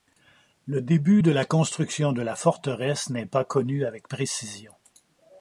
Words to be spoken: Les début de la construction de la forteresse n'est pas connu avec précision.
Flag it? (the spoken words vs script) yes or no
yes